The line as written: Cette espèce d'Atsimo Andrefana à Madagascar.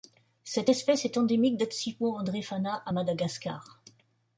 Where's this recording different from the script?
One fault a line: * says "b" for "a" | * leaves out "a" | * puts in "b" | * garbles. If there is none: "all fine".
* puts in "est endémique"